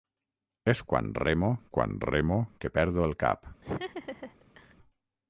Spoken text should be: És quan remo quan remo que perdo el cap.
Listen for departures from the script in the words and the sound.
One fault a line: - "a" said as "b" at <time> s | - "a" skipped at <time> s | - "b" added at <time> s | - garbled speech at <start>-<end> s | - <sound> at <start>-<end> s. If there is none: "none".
- laugh at 3.6-4.7 s